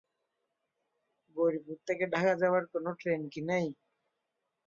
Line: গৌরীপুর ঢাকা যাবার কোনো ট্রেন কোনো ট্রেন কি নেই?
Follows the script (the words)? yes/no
no